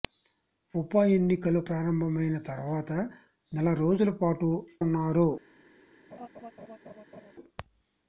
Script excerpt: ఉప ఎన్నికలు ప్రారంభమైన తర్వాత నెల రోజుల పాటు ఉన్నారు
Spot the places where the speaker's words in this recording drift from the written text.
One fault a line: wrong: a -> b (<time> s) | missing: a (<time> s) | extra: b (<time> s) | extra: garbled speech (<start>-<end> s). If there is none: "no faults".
no faults